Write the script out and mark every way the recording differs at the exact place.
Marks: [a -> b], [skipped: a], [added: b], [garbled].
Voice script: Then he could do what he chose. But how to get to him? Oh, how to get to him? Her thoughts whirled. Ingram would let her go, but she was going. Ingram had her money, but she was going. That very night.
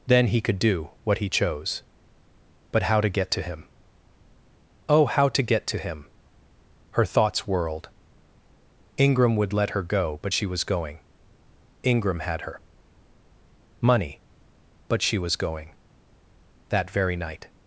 Then he could do what he chose. But how to get to him? Oh, how to get to him? Her thoughts whirled. Ingram would let her go, but she was going. Ingram had her money, but she was going. That very night.